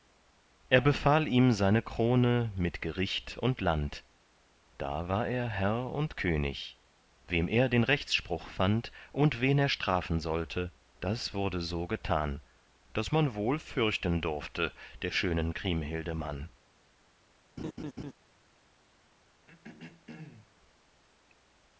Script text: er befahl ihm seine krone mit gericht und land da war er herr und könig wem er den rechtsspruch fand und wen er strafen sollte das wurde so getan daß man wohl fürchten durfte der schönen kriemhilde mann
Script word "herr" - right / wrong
right